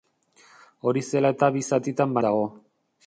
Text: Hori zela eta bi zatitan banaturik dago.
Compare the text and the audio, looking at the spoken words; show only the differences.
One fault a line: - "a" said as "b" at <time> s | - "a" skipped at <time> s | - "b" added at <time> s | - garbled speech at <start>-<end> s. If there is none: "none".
- "banaturik" skipped at 2.2 s